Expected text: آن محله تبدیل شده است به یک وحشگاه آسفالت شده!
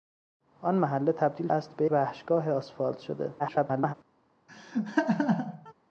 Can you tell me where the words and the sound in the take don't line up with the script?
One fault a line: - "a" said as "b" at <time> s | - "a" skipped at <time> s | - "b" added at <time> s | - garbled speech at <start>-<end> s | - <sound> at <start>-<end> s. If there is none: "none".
- "شده" skipped at 1.5 s
- "یک" skipped at 1.9 s
- garbled speech at 3.4-3.9 s
- laugh at 4.5-5.7 s